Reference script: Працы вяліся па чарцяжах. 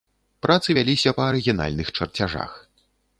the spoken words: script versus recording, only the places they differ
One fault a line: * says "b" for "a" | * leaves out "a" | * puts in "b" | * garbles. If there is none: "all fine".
* puts in "арыгінальных"